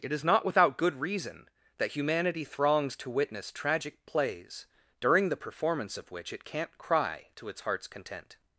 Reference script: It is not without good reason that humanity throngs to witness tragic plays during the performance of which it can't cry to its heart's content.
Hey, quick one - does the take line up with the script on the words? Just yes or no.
yes